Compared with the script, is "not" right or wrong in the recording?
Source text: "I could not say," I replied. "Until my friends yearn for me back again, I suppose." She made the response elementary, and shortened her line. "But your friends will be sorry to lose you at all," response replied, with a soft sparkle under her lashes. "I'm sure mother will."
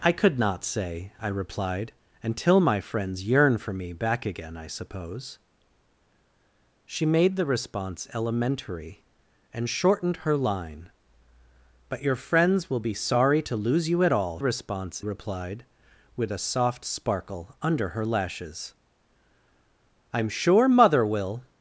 right